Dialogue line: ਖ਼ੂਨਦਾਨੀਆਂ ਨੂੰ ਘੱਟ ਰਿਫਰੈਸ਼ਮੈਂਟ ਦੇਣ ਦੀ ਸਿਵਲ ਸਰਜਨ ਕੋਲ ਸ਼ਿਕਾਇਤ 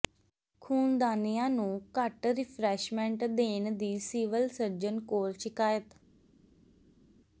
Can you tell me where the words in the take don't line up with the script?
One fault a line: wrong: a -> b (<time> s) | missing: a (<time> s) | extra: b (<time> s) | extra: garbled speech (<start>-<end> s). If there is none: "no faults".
no faults